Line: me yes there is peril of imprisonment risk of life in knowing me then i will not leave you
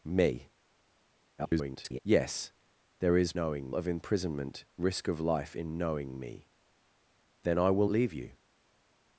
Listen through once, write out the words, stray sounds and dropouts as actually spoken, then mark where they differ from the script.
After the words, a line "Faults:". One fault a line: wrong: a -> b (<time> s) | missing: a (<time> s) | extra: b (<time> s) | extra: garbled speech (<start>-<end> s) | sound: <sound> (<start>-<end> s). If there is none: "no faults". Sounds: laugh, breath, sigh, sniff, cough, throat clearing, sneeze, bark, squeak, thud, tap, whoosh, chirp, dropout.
me [garbled] yes there is knowing of imprisonment risk of life in knowing me then i will leave you
Faults:
extra: garbled speech (1.4-2.0 s)
wrong: peril -> knowing (3.4 s)
missing: not (7.9 s)